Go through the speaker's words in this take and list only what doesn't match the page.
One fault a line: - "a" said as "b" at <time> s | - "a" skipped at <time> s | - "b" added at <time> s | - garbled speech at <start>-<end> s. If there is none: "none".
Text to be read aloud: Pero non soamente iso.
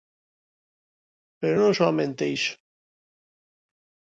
none